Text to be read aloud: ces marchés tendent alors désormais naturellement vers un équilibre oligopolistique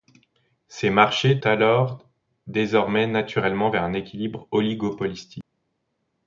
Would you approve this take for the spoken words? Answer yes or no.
no